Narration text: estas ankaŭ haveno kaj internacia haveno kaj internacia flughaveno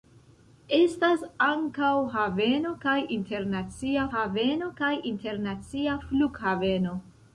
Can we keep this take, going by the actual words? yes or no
yes